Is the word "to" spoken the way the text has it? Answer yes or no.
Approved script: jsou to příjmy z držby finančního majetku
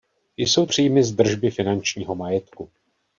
no